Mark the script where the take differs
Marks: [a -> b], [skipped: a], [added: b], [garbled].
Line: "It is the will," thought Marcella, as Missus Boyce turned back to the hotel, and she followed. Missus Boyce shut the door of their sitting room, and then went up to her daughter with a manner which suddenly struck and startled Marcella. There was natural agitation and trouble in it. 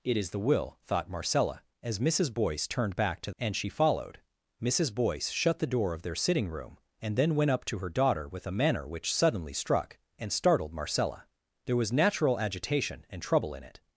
"It is the will," thought Marcella, as Missus Boyce turned back to [skipped: the hotel,] and she followed. Missus Boyce shut the door of their sitting room, and then went up to her daughter with a manner which suddenly struck and startled Marcella. There was natural agitation and trouble in it.